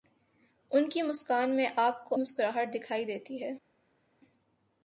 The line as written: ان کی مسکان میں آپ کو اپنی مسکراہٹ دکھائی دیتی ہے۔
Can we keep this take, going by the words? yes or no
no